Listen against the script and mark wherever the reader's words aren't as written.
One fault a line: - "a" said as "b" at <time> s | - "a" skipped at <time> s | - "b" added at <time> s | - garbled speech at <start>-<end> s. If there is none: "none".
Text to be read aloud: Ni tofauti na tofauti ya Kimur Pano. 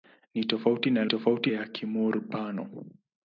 none